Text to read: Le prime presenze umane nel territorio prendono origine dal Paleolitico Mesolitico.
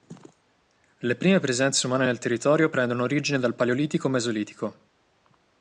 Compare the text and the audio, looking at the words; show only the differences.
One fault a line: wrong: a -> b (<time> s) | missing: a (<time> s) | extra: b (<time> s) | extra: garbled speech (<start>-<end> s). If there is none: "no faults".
no faults